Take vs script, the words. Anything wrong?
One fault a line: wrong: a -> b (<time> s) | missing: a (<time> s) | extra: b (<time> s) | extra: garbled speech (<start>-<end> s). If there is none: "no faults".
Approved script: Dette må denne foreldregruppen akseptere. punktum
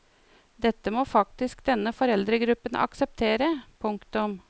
extra: faktisk (1.1 s)